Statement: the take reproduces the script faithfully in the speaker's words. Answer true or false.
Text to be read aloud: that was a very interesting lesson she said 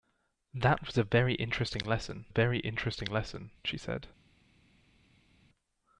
false